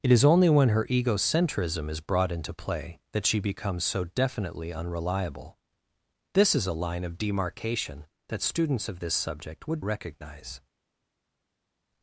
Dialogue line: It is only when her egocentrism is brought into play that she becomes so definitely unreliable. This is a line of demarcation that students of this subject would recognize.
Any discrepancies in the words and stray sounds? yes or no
no